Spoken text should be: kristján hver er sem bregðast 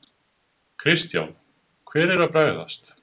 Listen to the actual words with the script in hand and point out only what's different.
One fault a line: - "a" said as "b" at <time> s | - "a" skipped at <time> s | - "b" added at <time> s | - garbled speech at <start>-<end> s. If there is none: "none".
- "sem" said as "að" at 2.2 s